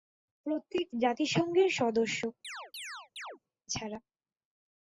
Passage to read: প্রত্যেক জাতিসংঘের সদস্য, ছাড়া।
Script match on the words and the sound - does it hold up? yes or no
no